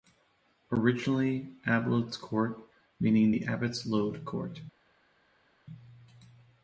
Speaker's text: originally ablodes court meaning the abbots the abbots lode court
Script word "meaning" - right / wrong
right